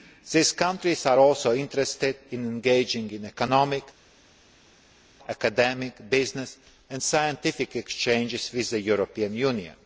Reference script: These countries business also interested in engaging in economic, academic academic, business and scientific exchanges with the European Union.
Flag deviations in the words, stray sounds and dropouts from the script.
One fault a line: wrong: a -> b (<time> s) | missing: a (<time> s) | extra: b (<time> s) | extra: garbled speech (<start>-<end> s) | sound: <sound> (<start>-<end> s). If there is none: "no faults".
wrong: business -> are (1.1 s)
missing: academic (6.1 s)